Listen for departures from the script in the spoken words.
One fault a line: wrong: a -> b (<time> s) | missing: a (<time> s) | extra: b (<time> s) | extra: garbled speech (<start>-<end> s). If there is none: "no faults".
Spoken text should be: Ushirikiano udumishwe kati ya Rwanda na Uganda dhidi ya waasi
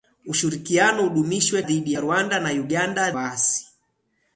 wrong: kati -> dhidi (1.6 s)
missing: dhidi ya (3.1 s)